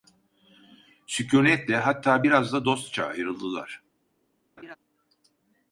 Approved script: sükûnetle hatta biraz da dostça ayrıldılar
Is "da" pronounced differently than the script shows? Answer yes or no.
no